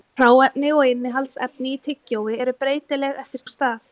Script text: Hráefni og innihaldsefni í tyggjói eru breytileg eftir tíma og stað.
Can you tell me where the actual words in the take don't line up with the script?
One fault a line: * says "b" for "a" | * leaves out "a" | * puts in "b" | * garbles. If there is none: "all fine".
* leaves out "tíma"